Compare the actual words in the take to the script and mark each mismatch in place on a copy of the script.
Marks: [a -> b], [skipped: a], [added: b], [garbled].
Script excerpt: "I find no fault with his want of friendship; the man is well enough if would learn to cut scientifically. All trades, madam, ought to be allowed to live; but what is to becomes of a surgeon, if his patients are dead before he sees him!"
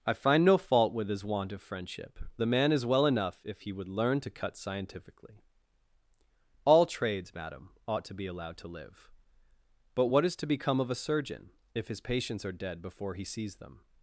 "I find no fault with his want of friendship; the man is well enough if [added: he] would learn to cut scientifically. All trades, madam, ought to be allowed to live; but what is to [becomes -> become] of a surgeon, if his patients are dead before he sees [him!" -> them]